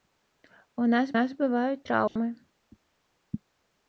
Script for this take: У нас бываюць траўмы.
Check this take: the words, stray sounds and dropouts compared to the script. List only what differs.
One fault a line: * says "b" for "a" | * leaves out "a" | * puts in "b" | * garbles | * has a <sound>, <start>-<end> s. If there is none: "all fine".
* puts in "нас"
* has a dropout, 2.1-2.2 s